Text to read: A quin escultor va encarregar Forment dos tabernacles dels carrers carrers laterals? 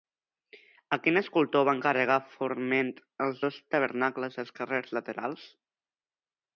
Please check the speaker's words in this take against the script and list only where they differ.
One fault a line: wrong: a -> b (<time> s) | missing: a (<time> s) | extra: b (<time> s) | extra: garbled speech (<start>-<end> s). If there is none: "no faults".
extra: els (3.3 s)
missing: carrers (5.0 s)